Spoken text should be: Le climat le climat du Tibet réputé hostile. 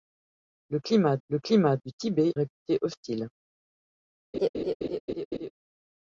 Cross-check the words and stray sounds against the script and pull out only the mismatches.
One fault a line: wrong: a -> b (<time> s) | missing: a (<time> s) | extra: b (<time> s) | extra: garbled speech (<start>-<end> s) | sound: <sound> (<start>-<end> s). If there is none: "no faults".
sound: laugh (4.3-5.5 s)